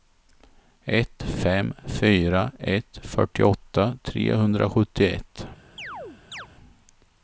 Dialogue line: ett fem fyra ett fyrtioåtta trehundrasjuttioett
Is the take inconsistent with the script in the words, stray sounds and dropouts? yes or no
yes